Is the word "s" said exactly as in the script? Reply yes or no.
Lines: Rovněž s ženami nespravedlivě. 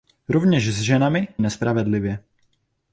yes